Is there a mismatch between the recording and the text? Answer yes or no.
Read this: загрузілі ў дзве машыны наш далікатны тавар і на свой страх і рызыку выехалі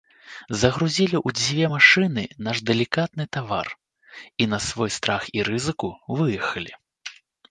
no